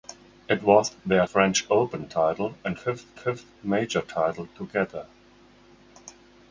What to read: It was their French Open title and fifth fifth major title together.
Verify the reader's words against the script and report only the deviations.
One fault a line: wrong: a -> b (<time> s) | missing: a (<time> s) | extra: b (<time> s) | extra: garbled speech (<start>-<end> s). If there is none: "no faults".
no faults